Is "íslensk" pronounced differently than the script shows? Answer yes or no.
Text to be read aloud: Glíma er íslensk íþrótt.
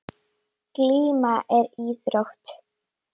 yes